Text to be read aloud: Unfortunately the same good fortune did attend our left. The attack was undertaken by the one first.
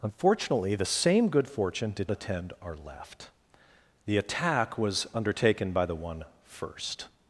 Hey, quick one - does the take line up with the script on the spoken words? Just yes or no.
yes